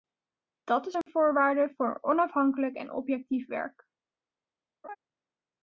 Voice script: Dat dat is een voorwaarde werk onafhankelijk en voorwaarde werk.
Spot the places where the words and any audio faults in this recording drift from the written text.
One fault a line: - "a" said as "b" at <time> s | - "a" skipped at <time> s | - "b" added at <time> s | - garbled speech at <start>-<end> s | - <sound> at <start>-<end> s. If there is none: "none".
- "dat" skipped at 0.9 s
- dropout at 1.0-1.1 s
- "werk" said as "voor" at 1.7 s
- "voorwaarde" said as "objectief" at 2.9 s
- laugh at 4.8-5.0 s